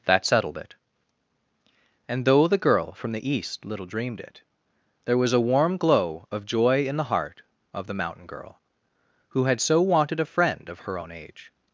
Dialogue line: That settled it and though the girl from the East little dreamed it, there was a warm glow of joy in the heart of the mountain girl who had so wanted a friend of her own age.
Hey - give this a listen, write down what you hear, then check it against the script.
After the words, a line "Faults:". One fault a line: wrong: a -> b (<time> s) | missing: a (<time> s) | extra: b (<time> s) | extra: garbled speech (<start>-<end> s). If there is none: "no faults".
That settled it and though the girl from the East little dreamed it, there was a warm glow of joy in the heart of the mountain girl who had so wanted a friend of her own age.
Faults:
no faults